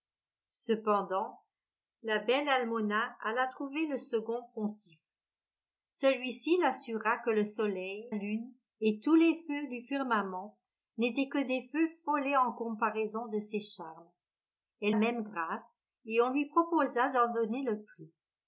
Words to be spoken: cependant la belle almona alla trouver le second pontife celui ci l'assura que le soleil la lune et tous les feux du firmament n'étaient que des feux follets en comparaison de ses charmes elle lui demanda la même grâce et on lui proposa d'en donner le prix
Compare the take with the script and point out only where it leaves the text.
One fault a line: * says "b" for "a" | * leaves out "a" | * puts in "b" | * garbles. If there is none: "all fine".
* leaves out "la"
* leaves out "lui demanda la"